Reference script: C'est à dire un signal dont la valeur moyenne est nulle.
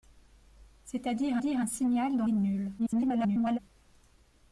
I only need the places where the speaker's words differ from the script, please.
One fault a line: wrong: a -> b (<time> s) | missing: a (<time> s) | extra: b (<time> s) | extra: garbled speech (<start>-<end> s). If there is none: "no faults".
extra: dire (1.4 s)
missing: la valeur moyenne (2.3 s)
extra: garbled speech (2.8-3.6 s)